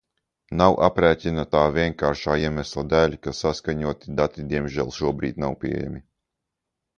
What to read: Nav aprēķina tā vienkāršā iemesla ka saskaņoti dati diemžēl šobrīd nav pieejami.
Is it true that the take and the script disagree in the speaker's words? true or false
true